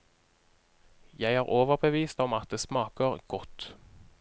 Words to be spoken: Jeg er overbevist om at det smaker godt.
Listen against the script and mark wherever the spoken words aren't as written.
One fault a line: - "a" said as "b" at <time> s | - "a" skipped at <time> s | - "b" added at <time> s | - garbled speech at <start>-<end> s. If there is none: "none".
none